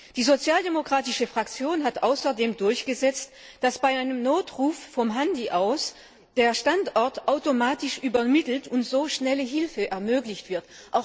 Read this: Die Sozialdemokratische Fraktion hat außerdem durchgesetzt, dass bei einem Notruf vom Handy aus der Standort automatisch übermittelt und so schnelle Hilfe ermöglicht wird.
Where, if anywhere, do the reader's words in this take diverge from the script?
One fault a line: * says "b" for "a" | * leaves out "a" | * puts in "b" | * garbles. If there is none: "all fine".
all fine